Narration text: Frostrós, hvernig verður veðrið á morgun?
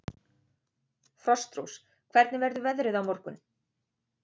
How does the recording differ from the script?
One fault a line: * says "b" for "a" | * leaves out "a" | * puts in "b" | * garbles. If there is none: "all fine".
all fine